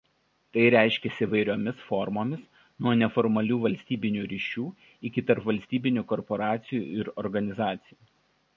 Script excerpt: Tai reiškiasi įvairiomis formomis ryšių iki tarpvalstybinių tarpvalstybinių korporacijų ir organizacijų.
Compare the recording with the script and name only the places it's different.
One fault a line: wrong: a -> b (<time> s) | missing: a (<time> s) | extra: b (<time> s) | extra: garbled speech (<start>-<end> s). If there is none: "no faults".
extra: nuo neformalių valstybinių (2.9 s)
missing: tarpvalstybinių (6.0 s)